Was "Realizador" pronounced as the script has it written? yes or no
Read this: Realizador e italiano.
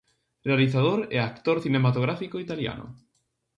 yes